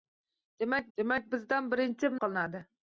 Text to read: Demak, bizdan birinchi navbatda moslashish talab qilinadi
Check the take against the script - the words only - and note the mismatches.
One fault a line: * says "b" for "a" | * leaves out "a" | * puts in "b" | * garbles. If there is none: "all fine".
* puts in "demak"
* leaves out "navbatda moslashish talab"